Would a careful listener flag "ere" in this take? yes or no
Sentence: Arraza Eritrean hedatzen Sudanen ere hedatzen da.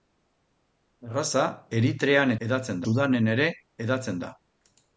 no